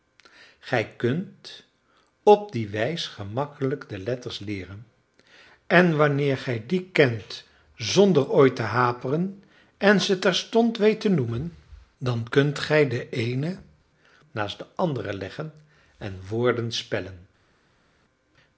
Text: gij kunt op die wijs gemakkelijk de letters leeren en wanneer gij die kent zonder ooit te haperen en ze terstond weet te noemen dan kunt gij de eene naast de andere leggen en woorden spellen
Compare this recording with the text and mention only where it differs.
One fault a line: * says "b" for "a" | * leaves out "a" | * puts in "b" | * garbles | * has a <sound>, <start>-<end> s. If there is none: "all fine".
all fine